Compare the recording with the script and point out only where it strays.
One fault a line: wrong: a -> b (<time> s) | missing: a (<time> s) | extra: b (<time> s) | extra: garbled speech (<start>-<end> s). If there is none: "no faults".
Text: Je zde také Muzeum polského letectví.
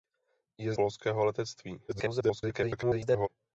missing: zde také Muzeum (0.7 s)
extra: garbled speech (1.9-3.3 s)